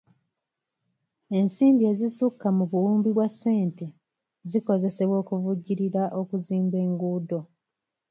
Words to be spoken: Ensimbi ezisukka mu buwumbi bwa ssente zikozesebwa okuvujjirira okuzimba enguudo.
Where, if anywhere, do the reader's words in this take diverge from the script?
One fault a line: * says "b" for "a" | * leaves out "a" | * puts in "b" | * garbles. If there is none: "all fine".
all fine